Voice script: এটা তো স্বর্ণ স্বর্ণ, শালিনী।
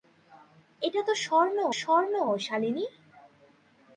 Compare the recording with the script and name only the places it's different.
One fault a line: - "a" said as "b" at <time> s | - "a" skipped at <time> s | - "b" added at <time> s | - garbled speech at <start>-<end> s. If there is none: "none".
none